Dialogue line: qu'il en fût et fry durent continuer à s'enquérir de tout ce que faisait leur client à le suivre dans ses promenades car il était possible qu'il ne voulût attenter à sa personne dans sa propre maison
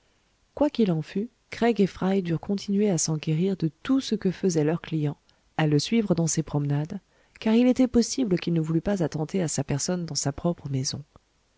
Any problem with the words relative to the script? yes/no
yes